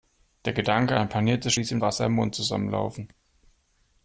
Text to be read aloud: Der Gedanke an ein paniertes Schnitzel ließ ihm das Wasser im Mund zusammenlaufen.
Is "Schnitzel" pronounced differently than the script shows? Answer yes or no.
yes